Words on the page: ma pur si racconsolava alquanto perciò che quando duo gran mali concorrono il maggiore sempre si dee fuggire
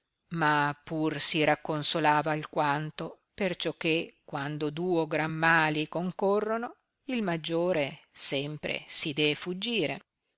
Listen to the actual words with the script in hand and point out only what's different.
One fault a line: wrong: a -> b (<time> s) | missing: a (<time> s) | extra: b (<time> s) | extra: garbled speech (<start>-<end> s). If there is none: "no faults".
no faults